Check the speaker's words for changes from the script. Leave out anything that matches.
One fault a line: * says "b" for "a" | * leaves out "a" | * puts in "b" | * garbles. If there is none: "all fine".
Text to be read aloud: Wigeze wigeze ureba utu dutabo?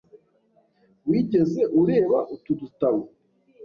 * leaves out "wigeze"